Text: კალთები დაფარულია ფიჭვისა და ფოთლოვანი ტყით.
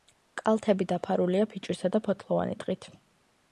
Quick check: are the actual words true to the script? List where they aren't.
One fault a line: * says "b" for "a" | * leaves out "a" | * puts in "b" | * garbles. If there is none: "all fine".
all fine